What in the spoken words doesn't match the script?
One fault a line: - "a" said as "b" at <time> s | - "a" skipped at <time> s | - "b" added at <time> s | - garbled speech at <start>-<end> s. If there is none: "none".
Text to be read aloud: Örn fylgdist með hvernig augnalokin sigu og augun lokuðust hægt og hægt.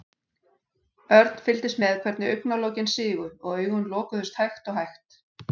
none